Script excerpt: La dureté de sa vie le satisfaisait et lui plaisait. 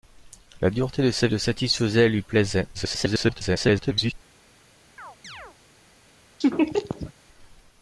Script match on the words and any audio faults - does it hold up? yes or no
no